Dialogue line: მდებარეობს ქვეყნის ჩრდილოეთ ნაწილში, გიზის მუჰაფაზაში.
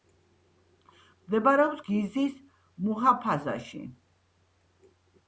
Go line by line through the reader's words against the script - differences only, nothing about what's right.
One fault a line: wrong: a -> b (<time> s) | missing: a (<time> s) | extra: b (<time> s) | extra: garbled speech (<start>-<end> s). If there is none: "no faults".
missing: ქვეყნის ჩრდილოეთ ნაწილში (1.8 s)